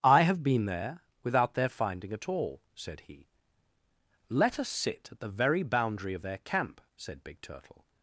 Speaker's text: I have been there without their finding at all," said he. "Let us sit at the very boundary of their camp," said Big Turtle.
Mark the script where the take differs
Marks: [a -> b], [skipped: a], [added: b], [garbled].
I have been there without their finding at all," said he. "Let us sit at the very boundary of their camp," said Big Turtle.